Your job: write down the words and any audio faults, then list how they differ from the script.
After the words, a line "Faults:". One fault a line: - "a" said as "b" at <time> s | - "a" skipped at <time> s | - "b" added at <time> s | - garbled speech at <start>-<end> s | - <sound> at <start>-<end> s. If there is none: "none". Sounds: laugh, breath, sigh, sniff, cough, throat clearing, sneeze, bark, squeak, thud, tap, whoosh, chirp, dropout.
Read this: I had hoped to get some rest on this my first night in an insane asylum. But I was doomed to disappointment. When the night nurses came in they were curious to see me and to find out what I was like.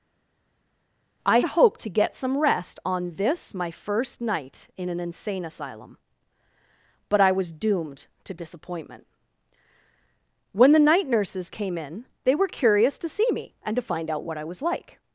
I hoped to get some rest on this my first night in an insane asylum. But I was doomed to disappointment. When the night nurses came in they were curious to see me and to find out what I was like.
Faults:
- "had" skipped at 1.4 s